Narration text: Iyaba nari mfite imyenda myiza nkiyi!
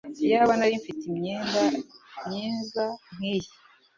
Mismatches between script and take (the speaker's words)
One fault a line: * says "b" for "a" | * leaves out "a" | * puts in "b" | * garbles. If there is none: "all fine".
all fine